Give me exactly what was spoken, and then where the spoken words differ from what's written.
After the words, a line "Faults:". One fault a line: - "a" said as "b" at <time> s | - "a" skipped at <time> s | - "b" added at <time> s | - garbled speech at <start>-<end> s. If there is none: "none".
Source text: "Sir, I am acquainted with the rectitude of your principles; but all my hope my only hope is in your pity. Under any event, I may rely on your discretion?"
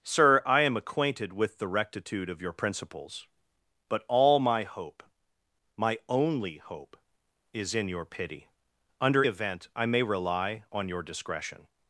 "Sir, I am acquainted with the rectitude of your principles; but all my hope my only hope is in your pity. Under event, I may rely on your discretion?"
Faults:
- "any" skipped at 9.2 s